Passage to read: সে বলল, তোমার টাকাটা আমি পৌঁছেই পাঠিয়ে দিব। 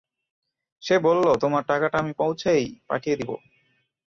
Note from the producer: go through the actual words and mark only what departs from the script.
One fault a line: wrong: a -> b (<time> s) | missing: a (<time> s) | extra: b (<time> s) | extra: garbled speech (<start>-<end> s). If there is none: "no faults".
no faults